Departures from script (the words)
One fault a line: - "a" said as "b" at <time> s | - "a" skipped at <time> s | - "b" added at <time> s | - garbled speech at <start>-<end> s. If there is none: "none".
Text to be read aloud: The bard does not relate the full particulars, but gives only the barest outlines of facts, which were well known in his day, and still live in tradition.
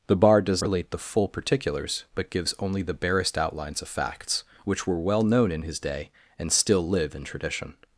- "not" skipped at 0.6 s